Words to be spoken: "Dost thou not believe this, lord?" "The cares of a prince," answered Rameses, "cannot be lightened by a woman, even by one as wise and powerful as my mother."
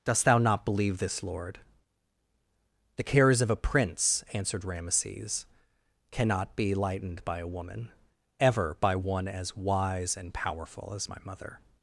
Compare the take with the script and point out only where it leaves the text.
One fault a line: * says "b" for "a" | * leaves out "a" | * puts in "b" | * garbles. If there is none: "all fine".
* says "ever" for "even"